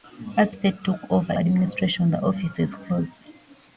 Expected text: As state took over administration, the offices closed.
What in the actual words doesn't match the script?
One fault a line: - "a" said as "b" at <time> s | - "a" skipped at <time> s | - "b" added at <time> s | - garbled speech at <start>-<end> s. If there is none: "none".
none